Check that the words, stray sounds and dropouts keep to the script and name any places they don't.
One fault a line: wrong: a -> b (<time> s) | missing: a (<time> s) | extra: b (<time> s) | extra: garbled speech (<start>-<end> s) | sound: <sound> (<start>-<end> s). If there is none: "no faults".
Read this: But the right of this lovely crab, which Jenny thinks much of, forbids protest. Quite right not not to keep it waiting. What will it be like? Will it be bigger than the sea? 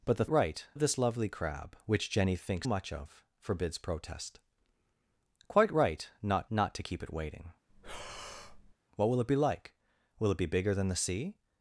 sound: breath (7.7-8.7 s)